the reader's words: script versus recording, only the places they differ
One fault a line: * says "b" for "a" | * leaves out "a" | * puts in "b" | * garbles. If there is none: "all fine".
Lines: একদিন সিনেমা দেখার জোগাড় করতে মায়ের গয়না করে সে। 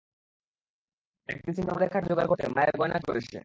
all fine